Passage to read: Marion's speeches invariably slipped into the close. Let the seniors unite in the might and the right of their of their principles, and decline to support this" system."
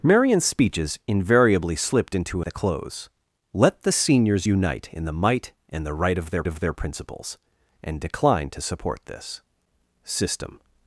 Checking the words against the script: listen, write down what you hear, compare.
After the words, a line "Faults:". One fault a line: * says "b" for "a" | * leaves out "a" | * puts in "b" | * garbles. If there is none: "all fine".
Marion's speeches invariably slipped into the close. Let the seniors unite in the might and the right of their of their principles, and decline to support this" system."
Faults:
all fine